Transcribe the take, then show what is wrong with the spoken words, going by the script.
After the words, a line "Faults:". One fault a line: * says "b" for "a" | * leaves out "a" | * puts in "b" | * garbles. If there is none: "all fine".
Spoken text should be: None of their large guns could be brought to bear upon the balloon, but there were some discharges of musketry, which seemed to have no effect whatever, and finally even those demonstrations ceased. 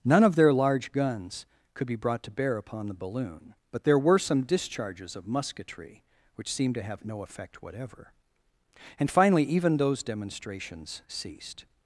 None of their large guns could be brought to bear upon the balloon, but there were some discharges of musketry, which seemed to have no effect whatever, and finally even those demonstrations ceased.
Faults:
all fine